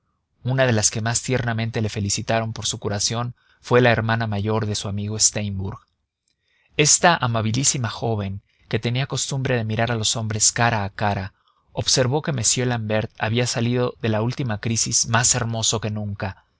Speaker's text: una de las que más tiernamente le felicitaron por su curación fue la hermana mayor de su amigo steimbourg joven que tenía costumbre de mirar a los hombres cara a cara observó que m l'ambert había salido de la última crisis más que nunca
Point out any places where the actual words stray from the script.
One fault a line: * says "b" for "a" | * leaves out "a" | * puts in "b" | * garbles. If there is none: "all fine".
* puts in "esta amabilísima"
* puts in "hermoso"